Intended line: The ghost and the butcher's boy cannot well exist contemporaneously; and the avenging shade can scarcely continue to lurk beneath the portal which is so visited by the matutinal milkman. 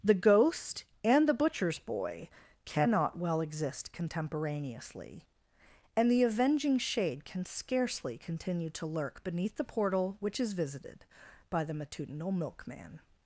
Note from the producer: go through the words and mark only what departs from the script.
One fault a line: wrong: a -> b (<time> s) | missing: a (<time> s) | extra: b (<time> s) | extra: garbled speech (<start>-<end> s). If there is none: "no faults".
missing: so (10.5 s)